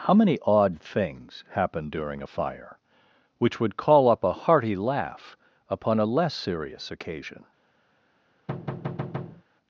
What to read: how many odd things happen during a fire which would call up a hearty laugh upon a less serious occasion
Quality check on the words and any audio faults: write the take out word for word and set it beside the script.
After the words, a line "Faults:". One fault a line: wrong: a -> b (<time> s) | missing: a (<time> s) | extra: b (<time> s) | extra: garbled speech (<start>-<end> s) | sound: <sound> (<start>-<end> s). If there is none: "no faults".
how many odd things happen during a fire which would call up a hearty laugh upon a less serious occasion
Faults:
sound: thud (8.5-9.4 s)